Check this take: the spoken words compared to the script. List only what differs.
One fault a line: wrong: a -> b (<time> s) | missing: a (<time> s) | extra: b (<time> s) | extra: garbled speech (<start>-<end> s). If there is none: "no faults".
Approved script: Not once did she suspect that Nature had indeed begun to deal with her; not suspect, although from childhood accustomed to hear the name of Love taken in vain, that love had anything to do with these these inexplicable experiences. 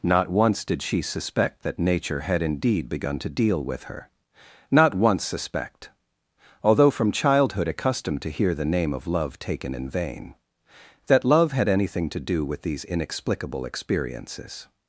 extra: once (5.0 s)
missing: these (12.9 s)